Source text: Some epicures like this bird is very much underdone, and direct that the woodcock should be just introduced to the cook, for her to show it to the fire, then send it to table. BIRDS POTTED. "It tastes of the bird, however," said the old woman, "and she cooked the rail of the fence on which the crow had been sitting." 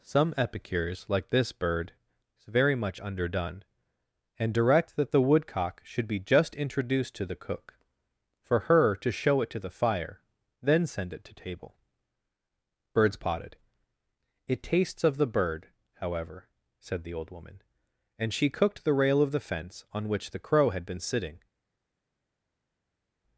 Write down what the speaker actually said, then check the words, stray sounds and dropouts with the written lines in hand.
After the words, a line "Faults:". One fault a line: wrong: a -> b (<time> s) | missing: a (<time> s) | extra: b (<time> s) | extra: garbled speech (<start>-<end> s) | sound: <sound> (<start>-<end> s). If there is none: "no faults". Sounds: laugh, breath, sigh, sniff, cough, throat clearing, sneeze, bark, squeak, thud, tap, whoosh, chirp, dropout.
Some epicures like this bird is very much underdone, and direct that the woodcock should be just introduced to the cook, for her to show it to the fire, then send it to table. BIRDS POTTED. "It tastes of the bird, however," said the old woman, "and she cooked the rail of the fence on which the crow had been sitting."
Faults:
no faults